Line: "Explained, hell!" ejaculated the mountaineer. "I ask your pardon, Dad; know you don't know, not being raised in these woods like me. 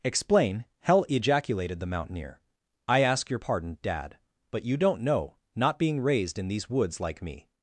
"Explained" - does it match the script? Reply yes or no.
no